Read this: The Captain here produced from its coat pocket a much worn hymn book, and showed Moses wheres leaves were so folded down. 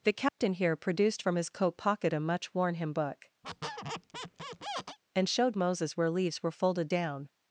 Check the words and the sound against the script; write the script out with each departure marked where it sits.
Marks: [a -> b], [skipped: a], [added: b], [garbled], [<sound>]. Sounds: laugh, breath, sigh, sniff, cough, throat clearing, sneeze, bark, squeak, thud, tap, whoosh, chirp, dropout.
The Captain [dropout] here produced from [its -> his] coat pocket a much worn hymn book, [squeak] and showed Moses [wheres -> where] leaves were [skipped: so] folded down.